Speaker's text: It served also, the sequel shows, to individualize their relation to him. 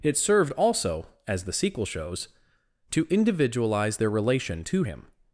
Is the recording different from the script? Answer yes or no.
yes